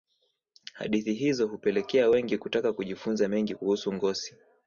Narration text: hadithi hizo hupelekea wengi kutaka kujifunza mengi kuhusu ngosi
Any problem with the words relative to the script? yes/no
no